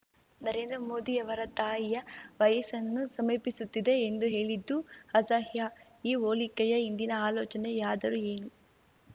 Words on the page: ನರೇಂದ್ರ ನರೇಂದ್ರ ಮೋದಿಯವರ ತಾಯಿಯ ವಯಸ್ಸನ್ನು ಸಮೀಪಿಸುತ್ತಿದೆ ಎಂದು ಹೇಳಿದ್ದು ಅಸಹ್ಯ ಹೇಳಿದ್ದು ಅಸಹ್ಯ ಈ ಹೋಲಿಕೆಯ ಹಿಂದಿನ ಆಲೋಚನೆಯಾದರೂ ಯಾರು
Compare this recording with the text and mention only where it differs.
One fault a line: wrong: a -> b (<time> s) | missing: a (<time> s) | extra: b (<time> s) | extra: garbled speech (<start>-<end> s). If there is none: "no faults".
missing: ನರೇಂದ್ರ (0.8 s)
missing: ಹೇಳಿದ್ದು ಅಸಹ್ಯ (5.7 s)
wrong: ಯಾರು -> ಏನು (8.3 s)